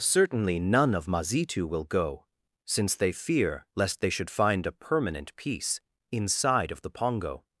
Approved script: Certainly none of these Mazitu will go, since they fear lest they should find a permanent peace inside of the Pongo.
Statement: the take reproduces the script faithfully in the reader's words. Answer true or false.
false